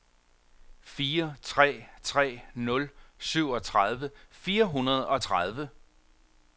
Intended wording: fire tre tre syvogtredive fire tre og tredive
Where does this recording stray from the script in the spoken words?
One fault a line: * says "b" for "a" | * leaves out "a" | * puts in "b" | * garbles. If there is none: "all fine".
* puts in "nul"
* says "hundrede" for "tre"